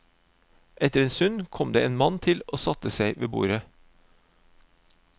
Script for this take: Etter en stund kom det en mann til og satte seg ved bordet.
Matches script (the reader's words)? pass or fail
pass